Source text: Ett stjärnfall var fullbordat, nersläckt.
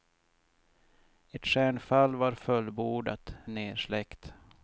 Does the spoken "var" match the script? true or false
true